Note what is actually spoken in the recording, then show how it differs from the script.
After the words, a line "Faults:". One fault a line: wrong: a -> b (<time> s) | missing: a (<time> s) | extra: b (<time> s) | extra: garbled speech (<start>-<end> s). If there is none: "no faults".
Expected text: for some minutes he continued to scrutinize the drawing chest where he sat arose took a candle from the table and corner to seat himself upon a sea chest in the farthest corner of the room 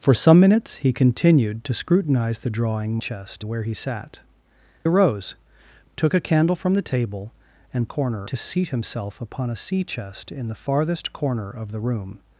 for some minutes he continued to scrutinize the drawing chest where he sat arose took a candle from the table and corner to seat himself upon a sea chest in the farthest corner of the room
Faults:
no faults